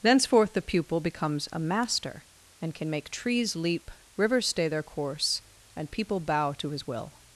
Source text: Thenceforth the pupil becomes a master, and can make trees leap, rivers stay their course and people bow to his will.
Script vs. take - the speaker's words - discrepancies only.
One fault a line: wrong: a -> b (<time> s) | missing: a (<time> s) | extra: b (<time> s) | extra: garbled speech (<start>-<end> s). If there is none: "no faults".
no faults